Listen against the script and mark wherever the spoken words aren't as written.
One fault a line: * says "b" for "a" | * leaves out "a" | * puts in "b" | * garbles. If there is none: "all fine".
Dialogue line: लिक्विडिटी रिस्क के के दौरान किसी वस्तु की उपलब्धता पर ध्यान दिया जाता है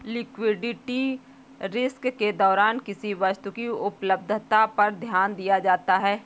* leaves out "के"